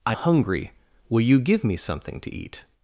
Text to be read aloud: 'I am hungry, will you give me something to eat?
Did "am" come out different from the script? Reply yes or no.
yes